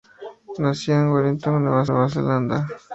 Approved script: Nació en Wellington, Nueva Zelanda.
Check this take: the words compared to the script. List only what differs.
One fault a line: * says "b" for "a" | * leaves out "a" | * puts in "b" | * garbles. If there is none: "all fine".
* puts in "Nueva"